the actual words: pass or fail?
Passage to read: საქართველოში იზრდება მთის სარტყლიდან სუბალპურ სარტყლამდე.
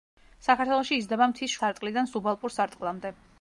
pass